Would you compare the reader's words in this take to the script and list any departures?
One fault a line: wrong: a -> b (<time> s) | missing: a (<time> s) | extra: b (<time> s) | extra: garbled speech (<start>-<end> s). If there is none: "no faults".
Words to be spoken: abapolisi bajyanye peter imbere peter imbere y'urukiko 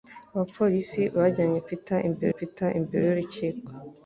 no faults